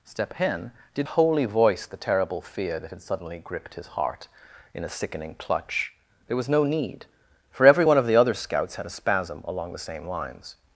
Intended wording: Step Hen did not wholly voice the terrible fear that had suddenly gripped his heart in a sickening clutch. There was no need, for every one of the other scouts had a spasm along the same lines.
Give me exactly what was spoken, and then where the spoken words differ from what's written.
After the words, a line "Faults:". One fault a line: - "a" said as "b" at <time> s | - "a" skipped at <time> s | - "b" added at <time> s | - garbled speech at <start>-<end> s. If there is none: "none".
Step Hen did wholly voice the terrible fear that had suddenly gripped his heart in a sickening clutch. There was no need, for every one of the other scouts had a spasm along the same lines.
Faults:
- "not" skipped at 1.1 s